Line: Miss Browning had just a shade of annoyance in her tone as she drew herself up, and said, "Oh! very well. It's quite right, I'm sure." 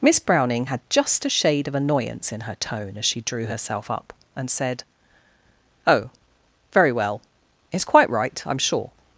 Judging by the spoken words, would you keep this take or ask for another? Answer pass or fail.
pass